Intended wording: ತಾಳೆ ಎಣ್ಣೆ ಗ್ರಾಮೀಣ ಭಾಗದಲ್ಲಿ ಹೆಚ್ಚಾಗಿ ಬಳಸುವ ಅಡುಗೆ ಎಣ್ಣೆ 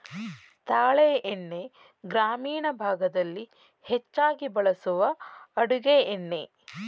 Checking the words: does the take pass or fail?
pass